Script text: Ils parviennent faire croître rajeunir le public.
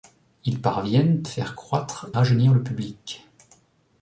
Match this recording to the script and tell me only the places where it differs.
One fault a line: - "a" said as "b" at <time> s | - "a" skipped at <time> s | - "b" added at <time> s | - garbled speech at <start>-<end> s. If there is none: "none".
none